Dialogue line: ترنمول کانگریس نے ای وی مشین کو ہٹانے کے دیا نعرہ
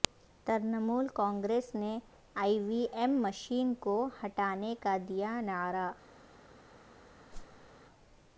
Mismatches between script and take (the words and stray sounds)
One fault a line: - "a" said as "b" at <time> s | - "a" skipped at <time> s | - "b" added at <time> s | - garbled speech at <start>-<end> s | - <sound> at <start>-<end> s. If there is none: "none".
- "ایم" added at 2.9 s
- "کے" said as "کا" at 4.8 s
- whoosh at 7.3-7.7 s